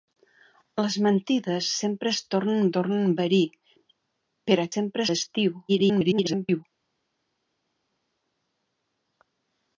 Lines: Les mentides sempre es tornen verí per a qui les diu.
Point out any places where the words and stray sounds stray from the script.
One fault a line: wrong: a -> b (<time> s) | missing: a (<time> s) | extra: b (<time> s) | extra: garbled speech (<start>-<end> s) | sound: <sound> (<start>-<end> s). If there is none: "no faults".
extra: tornen (2.8 s)
wrong: qui -> sempre (4.7 s)
extra: garbled speech (5.7-6.6 s)